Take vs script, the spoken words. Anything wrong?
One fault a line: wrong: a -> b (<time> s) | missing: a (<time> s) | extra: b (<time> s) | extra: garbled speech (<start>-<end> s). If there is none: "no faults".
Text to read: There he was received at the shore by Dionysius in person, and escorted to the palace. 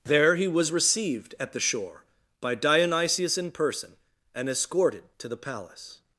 no faults